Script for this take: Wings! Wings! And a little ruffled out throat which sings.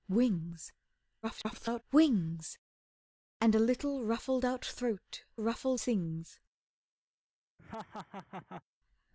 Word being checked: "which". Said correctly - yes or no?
no